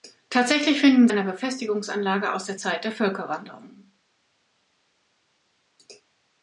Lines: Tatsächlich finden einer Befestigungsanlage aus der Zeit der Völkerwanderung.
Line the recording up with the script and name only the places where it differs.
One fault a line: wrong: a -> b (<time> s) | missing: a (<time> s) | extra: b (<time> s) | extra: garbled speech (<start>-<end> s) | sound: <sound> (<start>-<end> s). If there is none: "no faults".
no faults